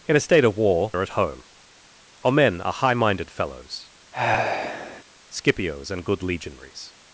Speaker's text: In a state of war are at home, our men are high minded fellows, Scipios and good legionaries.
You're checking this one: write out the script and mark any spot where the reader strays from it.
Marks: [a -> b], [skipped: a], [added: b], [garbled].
In a state of war are at home, our men are high minded fellows, Scipios and good legionaries.